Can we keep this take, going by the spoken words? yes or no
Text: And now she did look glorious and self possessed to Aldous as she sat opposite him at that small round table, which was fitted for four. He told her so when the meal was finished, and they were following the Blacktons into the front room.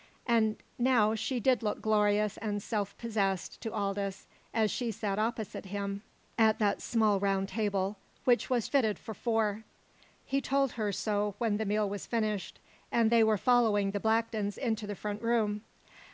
yes